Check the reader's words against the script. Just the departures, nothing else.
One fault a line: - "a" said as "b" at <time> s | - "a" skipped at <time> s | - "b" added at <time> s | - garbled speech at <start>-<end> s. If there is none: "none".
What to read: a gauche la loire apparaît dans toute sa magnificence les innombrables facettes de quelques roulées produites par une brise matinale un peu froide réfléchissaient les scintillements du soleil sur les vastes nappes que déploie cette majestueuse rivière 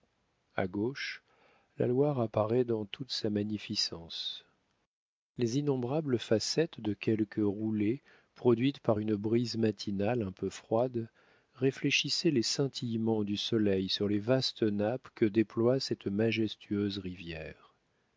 none